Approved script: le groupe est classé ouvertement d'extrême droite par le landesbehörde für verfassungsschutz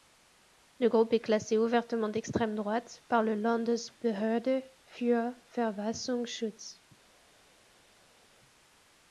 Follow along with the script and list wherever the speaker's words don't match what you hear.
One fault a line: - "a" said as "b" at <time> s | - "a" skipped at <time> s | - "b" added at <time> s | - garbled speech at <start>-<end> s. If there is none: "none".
none